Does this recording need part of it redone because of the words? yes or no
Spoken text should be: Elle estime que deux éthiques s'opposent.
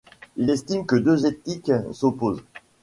yes